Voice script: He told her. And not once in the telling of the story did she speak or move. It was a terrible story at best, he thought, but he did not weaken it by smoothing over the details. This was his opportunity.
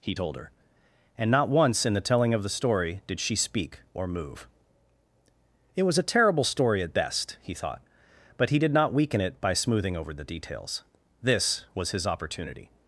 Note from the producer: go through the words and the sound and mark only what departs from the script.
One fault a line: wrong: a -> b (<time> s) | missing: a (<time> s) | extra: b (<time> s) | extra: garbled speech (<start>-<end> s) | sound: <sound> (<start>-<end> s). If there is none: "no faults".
no faults